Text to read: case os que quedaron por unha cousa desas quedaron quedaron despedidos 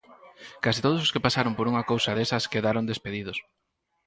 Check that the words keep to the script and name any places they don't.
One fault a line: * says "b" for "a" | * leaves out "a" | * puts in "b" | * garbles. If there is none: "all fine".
* puts in "todos"
* says "pasaron" for "quedaron"
* leaves out "quedaron"